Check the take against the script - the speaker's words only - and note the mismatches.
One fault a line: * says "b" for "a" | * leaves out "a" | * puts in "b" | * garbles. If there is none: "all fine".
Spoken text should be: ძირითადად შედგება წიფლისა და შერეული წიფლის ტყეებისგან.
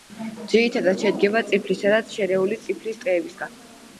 all fine